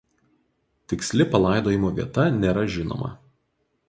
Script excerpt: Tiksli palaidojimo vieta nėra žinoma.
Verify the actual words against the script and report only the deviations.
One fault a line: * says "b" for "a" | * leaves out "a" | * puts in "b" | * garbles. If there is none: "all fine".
all fine